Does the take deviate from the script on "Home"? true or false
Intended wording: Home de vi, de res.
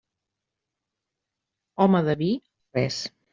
false